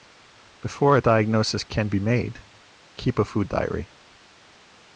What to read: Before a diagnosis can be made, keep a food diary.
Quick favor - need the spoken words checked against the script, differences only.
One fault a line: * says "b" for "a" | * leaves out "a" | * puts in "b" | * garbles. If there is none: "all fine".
all fine